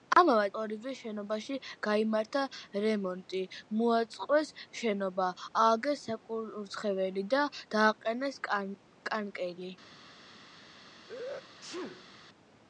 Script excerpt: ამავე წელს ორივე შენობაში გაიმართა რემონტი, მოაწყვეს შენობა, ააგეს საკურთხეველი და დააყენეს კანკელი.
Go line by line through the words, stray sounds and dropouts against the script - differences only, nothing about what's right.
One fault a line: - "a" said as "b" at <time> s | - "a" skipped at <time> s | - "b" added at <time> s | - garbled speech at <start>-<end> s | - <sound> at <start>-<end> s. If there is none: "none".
- "წელს" skipped at 0.5 s
- sneeze at 11.1-12.1 s